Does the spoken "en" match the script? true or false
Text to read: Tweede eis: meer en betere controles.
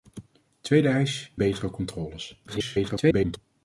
false